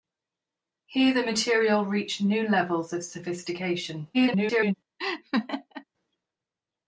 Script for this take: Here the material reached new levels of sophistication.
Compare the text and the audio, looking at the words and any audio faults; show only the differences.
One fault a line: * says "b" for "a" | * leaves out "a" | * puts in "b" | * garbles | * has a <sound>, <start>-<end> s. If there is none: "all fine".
* garbles
* has a laugh, 5.0-5.9 s